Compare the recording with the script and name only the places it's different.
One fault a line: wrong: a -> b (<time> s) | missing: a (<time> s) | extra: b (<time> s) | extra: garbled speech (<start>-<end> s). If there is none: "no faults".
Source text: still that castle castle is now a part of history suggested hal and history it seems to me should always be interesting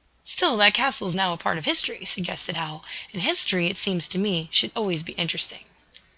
missing: castle (1.1 s)